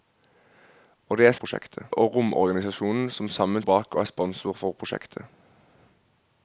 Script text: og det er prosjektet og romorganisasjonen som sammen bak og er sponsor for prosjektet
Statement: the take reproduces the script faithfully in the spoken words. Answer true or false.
true